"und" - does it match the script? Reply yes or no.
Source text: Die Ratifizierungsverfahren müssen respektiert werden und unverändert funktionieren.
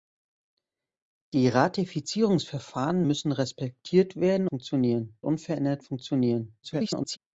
no